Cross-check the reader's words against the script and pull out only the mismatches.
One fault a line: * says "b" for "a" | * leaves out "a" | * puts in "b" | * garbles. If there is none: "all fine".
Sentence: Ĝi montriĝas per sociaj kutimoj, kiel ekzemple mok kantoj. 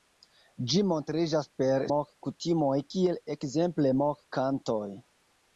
* says "mok" for "sociaj"